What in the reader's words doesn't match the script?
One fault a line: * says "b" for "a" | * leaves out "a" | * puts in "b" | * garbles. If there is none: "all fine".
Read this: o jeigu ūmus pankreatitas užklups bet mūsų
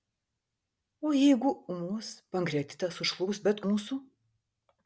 all fine